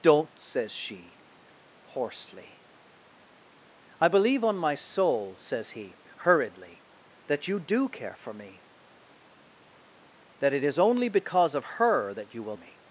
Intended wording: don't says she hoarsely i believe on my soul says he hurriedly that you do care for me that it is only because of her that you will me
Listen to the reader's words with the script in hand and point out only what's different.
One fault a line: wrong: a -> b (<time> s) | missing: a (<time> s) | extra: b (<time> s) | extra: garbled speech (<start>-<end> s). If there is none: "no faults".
no faults